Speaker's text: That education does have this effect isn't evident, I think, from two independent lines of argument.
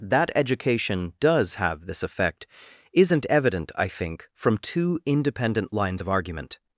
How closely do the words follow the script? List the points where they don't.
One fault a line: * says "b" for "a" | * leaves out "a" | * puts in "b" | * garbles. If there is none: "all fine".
all fine